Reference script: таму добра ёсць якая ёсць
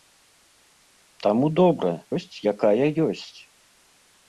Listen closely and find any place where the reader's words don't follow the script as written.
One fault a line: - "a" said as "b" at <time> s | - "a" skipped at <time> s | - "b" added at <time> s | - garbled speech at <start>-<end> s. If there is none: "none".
none